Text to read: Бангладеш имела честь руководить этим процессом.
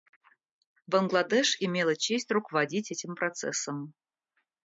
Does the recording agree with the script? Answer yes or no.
yes